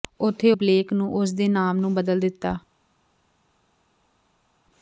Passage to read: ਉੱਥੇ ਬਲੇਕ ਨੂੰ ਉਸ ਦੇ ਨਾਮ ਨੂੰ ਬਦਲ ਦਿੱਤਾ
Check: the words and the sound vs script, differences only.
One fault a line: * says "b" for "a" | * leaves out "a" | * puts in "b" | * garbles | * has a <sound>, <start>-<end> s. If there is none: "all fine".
all fine